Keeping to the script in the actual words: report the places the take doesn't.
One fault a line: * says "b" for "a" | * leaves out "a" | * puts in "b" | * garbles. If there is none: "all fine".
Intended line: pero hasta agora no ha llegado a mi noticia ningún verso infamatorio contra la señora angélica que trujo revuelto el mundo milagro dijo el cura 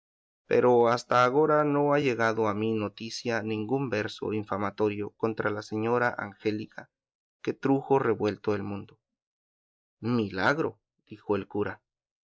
all fine